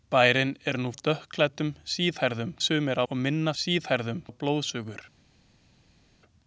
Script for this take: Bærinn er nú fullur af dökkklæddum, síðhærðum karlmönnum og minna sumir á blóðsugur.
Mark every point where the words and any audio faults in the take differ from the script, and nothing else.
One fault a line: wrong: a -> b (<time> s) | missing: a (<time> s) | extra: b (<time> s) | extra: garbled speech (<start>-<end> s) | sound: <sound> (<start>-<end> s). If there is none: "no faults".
missing: fullur (0.9 s)
wrong: karlmönnum -> sumir (2.7 s)
wrong: sumir -> síðhærðum (3.6 s)